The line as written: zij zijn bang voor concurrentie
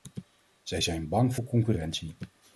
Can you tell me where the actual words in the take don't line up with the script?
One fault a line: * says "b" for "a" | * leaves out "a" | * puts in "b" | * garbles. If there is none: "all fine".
all fine